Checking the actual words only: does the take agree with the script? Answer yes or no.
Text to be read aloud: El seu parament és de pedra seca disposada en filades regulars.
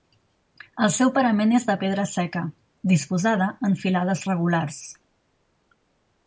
yes